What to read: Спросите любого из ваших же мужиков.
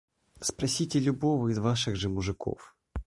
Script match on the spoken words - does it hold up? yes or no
yes